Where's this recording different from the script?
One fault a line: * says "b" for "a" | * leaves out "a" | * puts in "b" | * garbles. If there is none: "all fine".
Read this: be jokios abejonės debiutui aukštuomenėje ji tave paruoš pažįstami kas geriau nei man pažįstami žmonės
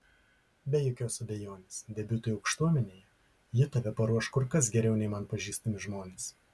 * says "kur" for "pažįstami"